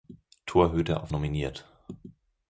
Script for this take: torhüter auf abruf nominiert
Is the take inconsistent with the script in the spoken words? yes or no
yes